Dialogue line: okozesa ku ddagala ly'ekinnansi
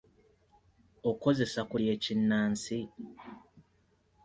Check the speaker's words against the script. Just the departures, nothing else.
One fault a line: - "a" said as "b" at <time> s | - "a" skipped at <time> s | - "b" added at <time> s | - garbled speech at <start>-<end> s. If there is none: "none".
- "ddagala" skipped at 1.8 s